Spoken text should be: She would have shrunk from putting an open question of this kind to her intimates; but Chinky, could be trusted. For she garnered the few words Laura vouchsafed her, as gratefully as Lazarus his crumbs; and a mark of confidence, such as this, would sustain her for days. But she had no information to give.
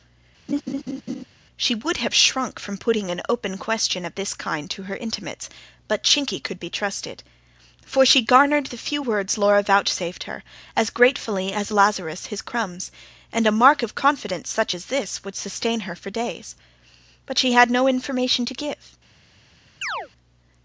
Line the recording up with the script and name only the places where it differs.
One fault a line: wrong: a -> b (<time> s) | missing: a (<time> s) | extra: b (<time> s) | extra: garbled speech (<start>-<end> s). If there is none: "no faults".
no faults